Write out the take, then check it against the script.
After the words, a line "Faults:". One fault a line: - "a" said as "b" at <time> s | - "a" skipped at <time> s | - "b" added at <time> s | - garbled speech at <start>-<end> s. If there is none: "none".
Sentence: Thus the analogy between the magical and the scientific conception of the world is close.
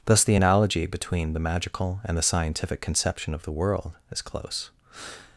Thus the analogy between the magical and the scientific conception of the world is close.
Faults:
none